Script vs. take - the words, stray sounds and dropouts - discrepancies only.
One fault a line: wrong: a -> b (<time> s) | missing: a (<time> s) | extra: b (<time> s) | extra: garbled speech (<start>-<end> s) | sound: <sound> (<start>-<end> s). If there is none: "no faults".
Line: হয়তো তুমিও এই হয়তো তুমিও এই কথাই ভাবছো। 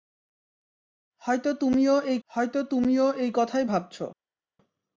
no faults